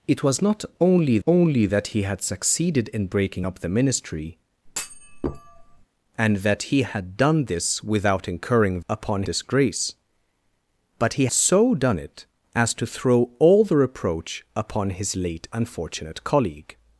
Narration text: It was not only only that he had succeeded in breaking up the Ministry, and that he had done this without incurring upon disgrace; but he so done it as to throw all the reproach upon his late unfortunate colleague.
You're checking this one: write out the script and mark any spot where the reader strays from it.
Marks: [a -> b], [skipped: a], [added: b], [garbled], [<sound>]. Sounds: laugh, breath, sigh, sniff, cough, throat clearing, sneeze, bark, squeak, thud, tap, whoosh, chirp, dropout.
It was not only only that he had succeeded in breaking up the Ministry, [thud] and that he had done this without incurring upon disgrace; but he so done it as to throw all the reproach upon his late unfortunate colleague.